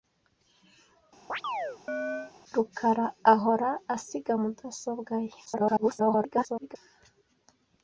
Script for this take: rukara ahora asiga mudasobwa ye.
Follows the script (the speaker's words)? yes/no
no